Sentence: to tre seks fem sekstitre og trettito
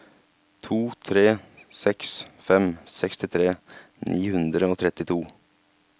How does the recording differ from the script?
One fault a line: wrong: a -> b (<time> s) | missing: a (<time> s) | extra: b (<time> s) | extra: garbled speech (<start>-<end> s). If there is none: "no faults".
extra: ni hundre (4.1 s)